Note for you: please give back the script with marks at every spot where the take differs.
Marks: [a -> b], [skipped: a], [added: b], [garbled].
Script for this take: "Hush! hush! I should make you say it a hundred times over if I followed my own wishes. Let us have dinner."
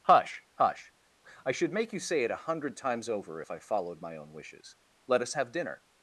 "Hush! hush! I should make you say it a hundred times over if I followed my own wishes. Let us have dinner."